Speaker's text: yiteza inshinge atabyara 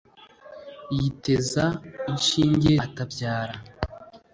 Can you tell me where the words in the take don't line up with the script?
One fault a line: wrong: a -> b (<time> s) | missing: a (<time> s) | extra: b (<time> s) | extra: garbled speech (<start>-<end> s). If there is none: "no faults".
no faults